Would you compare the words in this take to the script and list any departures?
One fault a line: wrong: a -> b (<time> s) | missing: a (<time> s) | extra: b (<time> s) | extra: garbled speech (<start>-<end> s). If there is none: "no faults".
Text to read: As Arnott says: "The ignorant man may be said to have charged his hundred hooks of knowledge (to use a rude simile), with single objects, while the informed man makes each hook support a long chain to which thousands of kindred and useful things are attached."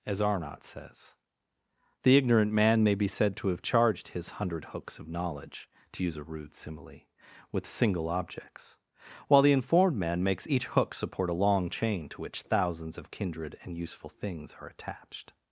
no faults